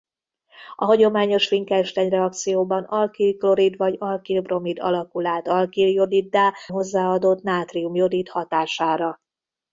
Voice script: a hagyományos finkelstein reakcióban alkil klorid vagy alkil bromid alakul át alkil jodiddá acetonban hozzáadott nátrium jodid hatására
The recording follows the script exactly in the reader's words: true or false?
false